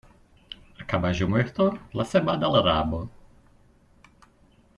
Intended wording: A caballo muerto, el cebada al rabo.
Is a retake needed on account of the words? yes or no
yes